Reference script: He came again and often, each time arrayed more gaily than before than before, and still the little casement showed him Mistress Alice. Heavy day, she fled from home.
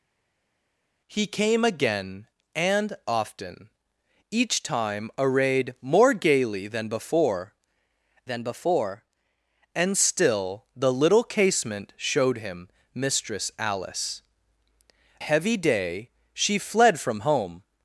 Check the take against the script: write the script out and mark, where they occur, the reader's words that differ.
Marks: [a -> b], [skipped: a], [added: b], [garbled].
He came again and often, each time arrayed more gaily than before than before, and still the little casement showed him Mistress Alice. Heavy day, she fled from home.